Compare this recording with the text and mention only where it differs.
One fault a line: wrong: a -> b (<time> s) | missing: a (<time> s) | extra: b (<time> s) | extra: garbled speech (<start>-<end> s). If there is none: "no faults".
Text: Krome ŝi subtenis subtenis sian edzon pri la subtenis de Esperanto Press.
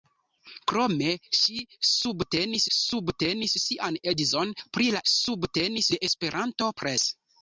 no faults